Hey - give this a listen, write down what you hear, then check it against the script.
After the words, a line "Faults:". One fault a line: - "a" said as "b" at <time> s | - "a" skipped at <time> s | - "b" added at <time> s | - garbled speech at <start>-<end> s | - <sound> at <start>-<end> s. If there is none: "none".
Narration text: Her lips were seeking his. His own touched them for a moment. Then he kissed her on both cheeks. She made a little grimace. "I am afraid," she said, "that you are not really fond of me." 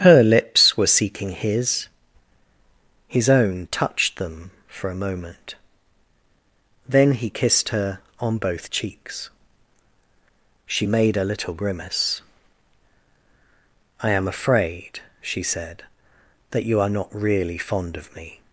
Her lips were seeking his. His own touched them for a moment. Then he kissed her on both cheeks. She made a little grimace. "I am afraid," she said, "that you are not really fond of me."
Faults:
none